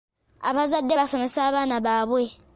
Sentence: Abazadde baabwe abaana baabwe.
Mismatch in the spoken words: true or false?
true